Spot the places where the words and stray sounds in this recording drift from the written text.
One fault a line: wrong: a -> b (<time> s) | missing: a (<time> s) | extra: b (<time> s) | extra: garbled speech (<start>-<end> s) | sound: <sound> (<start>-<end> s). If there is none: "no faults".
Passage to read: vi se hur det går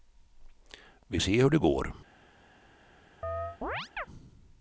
sound: chirp (3.2-4.1 s)